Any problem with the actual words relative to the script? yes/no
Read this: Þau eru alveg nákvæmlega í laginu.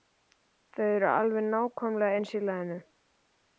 yes